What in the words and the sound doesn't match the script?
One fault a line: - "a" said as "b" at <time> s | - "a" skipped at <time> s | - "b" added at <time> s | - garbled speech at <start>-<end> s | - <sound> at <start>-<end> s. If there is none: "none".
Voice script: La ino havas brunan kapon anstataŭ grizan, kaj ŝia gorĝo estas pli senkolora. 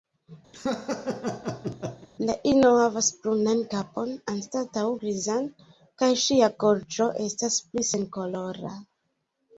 - laugh at 0.5-2.1 s